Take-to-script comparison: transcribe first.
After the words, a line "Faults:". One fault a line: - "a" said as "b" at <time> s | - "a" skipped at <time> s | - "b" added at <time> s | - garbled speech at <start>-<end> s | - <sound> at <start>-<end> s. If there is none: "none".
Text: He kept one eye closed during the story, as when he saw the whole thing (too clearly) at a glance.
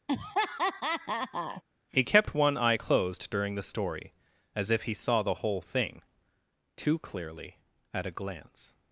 He kept one eye closed during the story, as if he saw the whole thing (too clearly) at a glance.
Faults:
- laugh at 0.1-1.6 s
- "when" said as "if" at 4.7 s